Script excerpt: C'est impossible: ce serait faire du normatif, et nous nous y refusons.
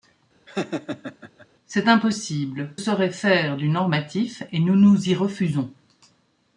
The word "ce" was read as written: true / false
false